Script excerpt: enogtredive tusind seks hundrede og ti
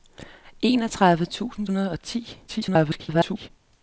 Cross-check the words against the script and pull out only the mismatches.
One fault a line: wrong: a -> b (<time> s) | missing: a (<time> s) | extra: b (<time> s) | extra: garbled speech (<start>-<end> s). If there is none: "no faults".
missing: seks (1.7 s)
extra: garbled speech (2.5-3.5 s)